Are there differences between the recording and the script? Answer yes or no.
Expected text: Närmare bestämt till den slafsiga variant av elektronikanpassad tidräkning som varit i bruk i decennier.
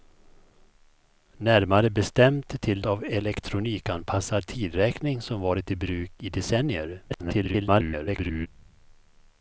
yes